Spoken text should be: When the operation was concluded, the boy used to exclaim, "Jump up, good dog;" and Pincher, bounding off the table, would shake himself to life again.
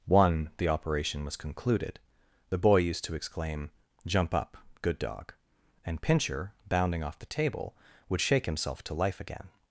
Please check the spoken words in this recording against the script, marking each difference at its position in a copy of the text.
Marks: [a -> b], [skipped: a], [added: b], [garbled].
[When -> One] the operation was concluded, the boy used to exclaim, "Jump up, good dog;" and Pincher, bounding off the table, would shake himself to life again.